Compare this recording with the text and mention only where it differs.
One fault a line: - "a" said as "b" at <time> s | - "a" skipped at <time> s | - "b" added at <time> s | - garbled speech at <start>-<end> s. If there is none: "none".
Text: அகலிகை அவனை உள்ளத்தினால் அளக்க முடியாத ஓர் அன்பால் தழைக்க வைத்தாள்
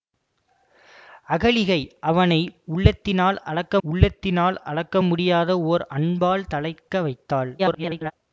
- "உள்ளத்தினால் அளக்க" added at 3.8 s
- garbled speech at 7.6-8.1 s